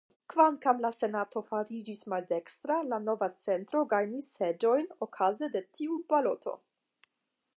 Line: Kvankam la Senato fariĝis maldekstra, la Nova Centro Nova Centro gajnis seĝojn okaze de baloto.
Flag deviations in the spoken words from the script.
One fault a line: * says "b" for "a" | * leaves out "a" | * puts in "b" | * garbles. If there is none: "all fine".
* leaves out "Nova Centro"
* puts in "tiu"